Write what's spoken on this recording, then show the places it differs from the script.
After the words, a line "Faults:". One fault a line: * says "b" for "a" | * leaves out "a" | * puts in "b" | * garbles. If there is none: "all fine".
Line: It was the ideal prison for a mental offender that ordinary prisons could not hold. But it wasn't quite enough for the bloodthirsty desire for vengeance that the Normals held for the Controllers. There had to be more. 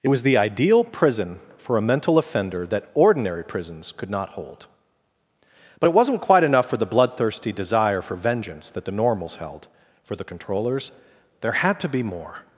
It was the ideal prison for a mental offender that ordinary prisons could not hold. But it wasn't quite enough for the bloodthirsty desire for vengeance that the Normals held for the Controllers. There had to be more.
Faults:
all fine